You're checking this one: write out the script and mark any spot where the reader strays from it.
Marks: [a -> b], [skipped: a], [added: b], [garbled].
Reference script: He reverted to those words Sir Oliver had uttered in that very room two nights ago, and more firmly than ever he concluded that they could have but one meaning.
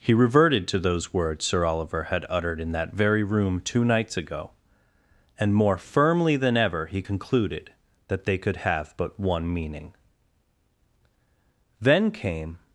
He reverted to those words Sir Oliver had uttered in that very room two nights ago, and more firmly than ever he concluded that they could have but one meaning. [added: Then came]